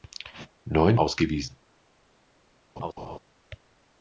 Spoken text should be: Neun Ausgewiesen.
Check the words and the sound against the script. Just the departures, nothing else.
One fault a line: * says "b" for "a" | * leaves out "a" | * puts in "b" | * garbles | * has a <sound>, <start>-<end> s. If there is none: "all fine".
* has a laugh, 2.8-3.2 s